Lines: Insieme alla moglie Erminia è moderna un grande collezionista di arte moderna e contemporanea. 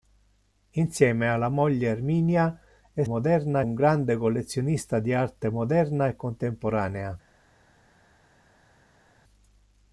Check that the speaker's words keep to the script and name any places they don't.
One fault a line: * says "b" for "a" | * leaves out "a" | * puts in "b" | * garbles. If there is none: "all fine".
all fine